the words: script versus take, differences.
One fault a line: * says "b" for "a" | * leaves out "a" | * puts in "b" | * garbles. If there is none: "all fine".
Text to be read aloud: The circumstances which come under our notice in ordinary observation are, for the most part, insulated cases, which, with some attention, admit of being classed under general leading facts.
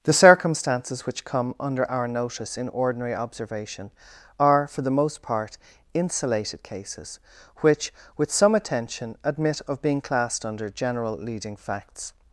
all fine